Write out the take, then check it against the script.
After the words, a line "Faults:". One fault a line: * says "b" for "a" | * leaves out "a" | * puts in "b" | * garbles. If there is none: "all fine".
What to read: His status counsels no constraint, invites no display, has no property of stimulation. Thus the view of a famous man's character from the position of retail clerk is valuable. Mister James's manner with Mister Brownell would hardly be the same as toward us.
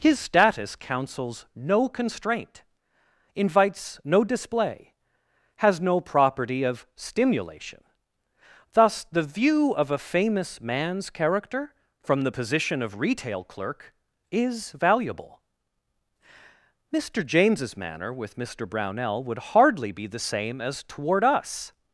His status counsels no constraint, invites no display, has no property of stimulation. Thus the view of a famous man's character from the position of retail clerk is valuable. Mister James's manner with Mister Brownell would hardly be the same as toward us.
Faults:
all fine